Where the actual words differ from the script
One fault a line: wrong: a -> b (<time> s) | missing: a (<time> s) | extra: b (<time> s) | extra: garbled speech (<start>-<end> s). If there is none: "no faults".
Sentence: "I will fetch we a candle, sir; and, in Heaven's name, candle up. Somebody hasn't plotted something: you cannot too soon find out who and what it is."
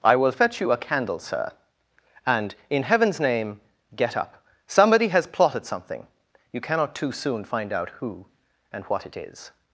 wrong: we -> you (0.6 s)
wrong: candle -> get (4.0 s)
wrong: hasn't -> has (5.1 s)